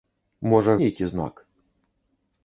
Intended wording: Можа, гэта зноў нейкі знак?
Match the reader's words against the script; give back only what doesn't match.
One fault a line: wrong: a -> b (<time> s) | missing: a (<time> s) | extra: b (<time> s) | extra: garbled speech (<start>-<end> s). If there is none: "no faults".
missing: гэта зноў (0.7 s)